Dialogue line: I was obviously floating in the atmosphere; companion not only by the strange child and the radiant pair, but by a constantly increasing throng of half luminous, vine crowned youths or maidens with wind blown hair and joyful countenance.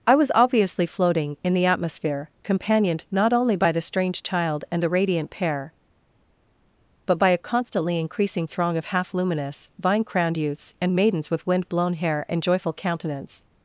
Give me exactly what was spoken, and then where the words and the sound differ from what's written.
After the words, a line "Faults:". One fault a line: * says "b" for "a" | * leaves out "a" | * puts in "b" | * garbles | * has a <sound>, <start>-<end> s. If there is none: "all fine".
I was obviously floating in the atmosphere; companioned not only by the strange child and the radiant pair, but by a constantly increasing throng of half luminous, vine crowned youths and maidens with wind blown hair and joyful countenance.
Faults:
* says "companioned" for "companion"
* says "and" for "or"